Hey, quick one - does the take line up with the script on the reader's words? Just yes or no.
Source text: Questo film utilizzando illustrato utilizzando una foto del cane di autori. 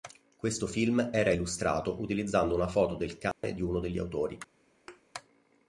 no